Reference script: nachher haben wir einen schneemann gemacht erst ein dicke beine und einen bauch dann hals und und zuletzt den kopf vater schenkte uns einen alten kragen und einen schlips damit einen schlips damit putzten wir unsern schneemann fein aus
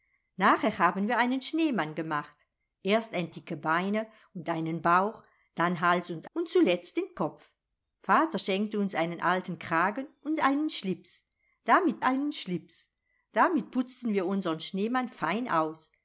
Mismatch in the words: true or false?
false